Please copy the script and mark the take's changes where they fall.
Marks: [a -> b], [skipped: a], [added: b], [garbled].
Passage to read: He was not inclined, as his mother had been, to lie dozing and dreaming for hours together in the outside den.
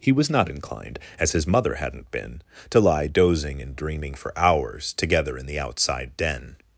He was not inclined, as his mother [had -> hadn't] been, to lie dozing and dreaming for hours together in the outside den.